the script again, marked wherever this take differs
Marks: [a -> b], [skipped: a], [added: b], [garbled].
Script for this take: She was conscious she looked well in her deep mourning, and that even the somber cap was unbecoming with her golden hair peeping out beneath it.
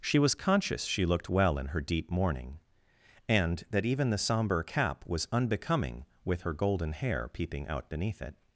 She was conscious she looked well in her deep mourning, and that even the somber cap was unbecoming with her golden hair peeping out beneath it.